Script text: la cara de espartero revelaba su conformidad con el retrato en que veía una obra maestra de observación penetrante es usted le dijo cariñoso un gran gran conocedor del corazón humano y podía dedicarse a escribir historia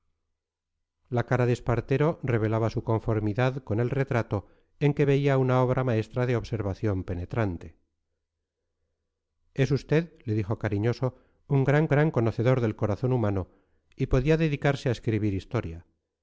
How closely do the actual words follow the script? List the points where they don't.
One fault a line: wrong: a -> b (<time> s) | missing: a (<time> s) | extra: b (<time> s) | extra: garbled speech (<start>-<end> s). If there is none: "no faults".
no faults